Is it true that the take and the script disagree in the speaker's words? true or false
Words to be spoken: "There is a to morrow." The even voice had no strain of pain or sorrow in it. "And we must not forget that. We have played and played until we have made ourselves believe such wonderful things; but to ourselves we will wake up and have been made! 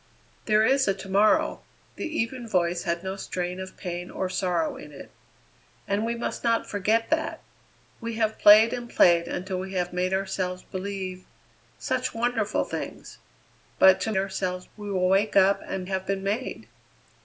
false